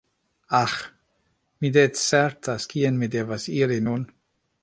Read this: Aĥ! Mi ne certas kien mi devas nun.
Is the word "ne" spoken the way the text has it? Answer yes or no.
yes